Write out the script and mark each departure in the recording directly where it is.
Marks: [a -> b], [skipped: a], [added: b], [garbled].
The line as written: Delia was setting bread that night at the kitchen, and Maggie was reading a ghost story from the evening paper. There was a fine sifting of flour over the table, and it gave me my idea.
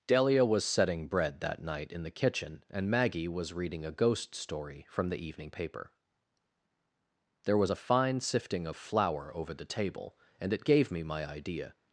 Delia was setting bread that night [at -> in] the kitchen, and Maggie was reading a ghost story from the evening paper. There was a fine sifting of flour over the table, and it gave me my idea.